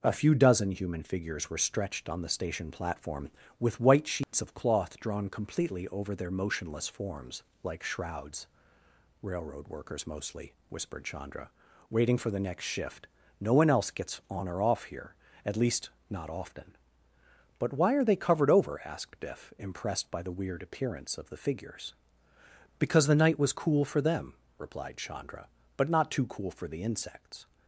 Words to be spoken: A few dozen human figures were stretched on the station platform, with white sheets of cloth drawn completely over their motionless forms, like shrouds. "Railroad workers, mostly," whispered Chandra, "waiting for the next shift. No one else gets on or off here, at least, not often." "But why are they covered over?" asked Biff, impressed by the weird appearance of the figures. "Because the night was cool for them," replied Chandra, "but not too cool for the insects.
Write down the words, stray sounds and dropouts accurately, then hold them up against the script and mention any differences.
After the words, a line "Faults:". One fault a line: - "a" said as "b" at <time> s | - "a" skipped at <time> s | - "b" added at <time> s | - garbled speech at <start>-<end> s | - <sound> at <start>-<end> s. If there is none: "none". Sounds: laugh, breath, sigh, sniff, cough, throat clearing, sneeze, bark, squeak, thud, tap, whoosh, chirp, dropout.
A few dozen human figures were stretched on the station platform, with white sheets of cloth drawn completely over their motionless forms, like shrouds. "Railroad workers, mostly," whispered Chandra, "waiting for the next shift. No one else gets on or off here, at least, not often." "But why are they covered over?" asked Biff, impressed by the weird appearance of the figures. "Because the night was cool for them," replied Chandra, "but not too cool for the insects.
Faults:
- dropout at 4.2-4.3 s